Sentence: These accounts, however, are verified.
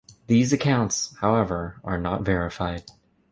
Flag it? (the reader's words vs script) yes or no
yes